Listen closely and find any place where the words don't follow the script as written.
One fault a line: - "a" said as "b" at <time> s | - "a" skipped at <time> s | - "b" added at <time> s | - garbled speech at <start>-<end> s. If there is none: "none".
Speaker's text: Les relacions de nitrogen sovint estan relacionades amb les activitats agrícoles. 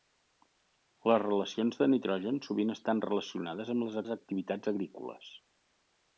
- "les" added at 4.0 s